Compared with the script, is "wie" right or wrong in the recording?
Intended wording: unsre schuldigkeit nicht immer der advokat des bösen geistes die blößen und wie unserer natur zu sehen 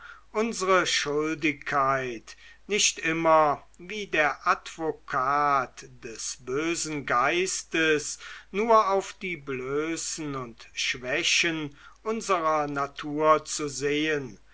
wrong